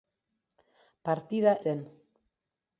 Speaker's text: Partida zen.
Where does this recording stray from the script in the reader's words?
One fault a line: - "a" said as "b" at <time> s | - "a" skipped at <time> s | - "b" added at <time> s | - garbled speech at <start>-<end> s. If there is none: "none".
none